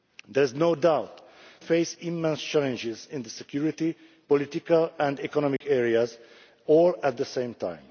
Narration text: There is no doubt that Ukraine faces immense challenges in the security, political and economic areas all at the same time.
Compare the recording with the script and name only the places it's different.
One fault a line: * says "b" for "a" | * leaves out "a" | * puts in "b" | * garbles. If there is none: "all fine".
* leaves out "that Ukraine"